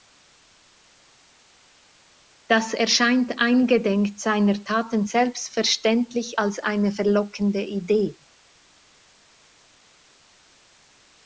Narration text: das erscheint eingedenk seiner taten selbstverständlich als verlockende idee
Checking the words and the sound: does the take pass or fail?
fail